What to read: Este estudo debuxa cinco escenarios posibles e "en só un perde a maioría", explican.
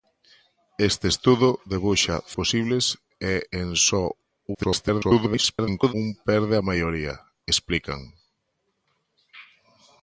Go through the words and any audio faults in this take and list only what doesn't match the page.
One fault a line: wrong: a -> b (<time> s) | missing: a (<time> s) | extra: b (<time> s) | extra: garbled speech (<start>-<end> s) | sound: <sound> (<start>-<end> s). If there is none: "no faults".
missing: cinco escenarios (2.1 s)
extra: garbled speech (4.5-5.9 s)